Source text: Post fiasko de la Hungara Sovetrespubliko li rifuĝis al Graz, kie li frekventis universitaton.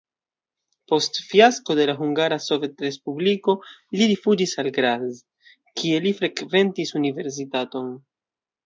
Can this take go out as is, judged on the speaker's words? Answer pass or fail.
pass